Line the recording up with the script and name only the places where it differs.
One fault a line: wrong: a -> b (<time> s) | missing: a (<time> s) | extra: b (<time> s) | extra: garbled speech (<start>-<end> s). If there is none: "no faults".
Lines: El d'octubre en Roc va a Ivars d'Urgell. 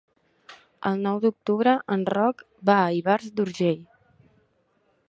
extra: nou (1.1 s)